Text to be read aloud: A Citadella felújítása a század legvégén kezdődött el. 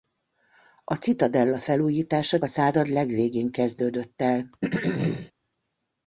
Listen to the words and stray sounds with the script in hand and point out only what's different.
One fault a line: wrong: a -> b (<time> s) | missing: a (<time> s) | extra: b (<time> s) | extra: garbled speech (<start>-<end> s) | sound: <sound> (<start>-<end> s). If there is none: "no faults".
sound: throat clearing (4.6-5.3 s)